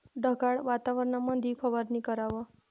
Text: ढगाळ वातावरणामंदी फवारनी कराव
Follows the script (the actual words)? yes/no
yes